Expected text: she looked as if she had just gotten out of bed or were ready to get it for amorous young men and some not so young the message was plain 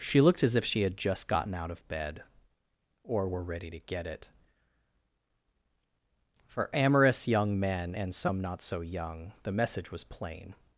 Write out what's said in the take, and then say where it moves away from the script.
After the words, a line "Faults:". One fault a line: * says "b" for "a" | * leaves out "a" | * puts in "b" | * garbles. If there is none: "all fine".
she looked as if she had just gotten out of bed or were ready to get it for amorous young men and some not so young the message was plain
Faults:
all fine